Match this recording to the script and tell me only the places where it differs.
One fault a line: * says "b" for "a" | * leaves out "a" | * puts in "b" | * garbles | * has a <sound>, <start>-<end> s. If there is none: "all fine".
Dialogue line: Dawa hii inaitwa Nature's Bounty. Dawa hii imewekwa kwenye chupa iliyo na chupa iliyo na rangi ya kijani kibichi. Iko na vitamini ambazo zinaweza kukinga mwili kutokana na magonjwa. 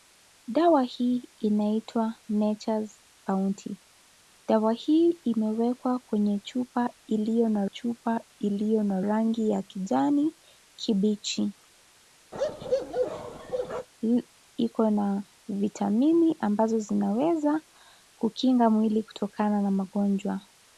* has a bark, 12.3-13.9 s